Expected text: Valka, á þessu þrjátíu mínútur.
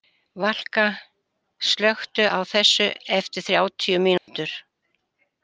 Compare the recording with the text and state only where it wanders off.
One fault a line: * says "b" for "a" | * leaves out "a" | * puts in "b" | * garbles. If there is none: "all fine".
* puts in "slökktu"
* puts in "eftir"